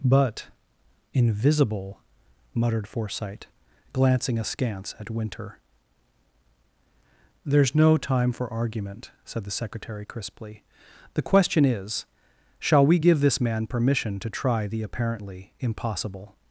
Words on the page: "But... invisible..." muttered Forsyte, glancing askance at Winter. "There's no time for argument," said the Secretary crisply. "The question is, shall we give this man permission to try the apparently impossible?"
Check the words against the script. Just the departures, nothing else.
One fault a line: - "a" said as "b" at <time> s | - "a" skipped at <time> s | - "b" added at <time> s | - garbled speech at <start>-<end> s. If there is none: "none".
none